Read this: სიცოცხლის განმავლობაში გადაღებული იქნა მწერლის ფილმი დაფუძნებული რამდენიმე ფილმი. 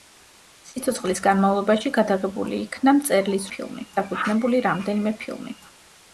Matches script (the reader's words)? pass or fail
pass